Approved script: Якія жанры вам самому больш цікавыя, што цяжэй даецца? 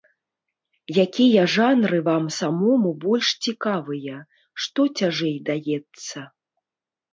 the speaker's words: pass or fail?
pass